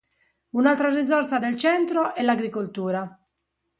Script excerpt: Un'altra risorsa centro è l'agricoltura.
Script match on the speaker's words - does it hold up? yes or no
no